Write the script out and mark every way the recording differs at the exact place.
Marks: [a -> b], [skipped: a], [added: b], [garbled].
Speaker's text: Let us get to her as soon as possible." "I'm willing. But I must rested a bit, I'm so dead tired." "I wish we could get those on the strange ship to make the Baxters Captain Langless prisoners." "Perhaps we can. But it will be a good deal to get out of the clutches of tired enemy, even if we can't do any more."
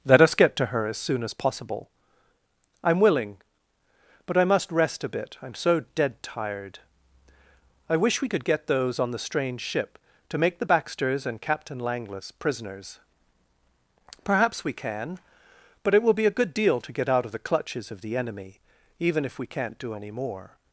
Let us get to her as soon as possible." "I'm willing. But I must [rested -> rest] a bit, I'm so dead tired." "I wish we could get those on the strange ship to make the Baxters [added: and] Captain Langless prisoners." "Perhaps we can. But it will be a good deal to get out of the clutches of [tired -> the] enemy, even if we can't do any more."